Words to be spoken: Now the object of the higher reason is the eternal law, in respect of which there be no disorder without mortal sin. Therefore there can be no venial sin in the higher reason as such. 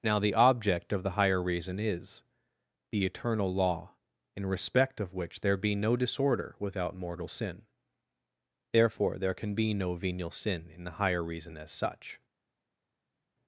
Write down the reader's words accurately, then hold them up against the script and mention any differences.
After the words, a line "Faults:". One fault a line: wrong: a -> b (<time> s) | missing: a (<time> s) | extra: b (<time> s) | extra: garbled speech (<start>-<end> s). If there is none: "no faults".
Now the object of the higher reason is the eternal law, in respect of which there be no disorder without mortal sin. Therefore there can be no venial sin in the higher reason as such.
Faults:
no faults